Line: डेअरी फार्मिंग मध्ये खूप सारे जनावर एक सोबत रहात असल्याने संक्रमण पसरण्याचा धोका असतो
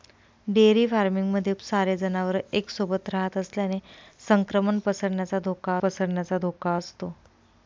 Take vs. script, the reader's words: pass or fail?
fail